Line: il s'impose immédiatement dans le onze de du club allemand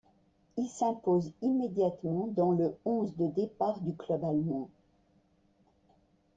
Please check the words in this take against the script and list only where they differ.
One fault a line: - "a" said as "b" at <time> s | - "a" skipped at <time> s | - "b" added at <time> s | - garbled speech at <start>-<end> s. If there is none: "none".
- "départ" added at 3.3 s